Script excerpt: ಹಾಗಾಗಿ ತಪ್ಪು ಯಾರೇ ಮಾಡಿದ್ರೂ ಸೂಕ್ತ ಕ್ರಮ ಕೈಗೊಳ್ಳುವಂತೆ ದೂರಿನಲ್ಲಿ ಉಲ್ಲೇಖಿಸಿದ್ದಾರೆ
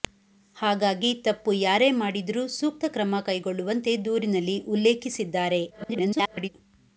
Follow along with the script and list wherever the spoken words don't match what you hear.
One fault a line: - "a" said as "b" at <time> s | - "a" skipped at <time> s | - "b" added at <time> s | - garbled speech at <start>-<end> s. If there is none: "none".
- garbled speech at 5.7-6.5 s